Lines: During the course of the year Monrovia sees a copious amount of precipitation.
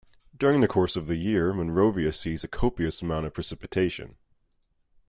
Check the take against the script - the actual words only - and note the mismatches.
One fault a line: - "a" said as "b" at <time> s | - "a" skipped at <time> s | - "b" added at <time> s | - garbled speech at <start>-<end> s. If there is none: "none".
none